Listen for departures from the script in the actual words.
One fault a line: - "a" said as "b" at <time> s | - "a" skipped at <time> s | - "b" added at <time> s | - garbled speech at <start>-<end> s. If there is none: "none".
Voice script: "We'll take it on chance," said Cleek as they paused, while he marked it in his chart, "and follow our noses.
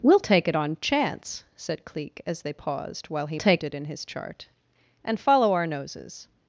- "marked" said as "take" at 3.3 s